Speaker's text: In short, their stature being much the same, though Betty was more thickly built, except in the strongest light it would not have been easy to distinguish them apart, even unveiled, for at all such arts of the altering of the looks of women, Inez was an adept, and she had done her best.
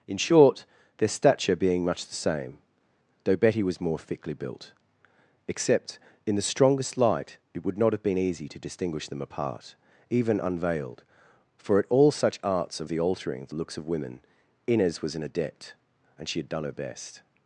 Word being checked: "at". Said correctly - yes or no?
yes